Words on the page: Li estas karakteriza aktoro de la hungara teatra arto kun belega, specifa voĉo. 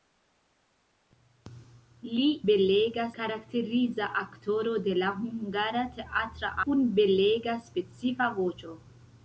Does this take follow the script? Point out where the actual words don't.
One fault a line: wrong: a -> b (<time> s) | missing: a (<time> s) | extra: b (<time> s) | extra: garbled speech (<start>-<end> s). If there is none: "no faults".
wrong: estas -> belega (2.5 s)
missing: arto (6.5 s)